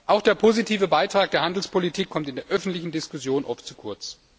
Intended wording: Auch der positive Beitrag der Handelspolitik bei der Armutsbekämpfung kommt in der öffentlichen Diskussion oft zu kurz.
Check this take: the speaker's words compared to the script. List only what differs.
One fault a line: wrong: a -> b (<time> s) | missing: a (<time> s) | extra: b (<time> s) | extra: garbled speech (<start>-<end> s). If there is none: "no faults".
missing: bei der Armutsbekämpfung (2.1 s)